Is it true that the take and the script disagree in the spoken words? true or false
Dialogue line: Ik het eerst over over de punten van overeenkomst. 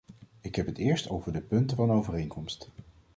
true